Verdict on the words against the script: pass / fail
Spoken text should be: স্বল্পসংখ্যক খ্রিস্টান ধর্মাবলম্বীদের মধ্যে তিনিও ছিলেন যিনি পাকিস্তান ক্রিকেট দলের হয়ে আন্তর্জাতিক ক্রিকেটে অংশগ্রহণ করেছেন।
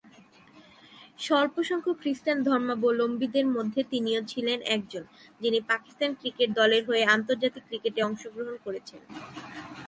fail